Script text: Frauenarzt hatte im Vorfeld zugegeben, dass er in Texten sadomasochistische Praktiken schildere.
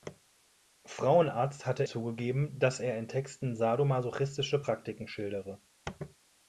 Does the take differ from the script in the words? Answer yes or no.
yes